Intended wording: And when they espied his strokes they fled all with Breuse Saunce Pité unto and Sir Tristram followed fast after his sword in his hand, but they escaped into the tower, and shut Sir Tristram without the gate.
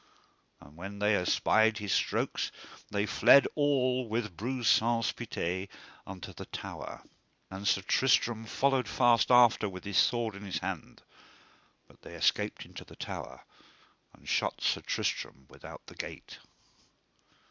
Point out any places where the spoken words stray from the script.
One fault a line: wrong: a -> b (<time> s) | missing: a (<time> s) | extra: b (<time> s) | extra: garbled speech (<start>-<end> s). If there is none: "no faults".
extra: the tower (6.3 s)
extra: with (9.7 s)